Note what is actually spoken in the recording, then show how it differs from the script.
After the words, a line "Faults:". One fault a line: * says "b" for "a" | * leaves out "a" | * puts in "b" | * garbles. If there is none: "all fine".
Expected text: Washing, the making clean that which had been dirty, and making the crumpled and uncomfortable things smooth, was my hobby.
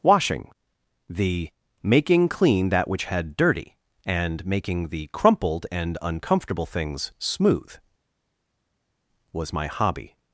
Washing, the making clean that which had dirty, and making the crumpled and uncomfortable things smooth, was my hobby.
Faults:
* leaves out "been"